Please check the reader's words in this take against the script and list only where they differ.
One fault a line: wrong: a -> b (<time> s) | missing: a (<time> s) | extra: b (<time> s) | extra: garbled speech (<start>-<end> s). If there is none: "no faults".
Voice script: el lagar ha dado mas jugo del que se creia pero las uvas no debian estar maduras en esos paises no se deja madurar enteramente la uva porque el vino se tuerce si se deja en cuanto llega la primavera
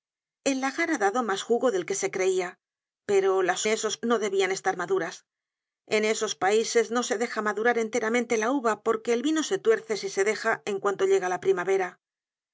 wrong: uvas -> esos (3.7 s)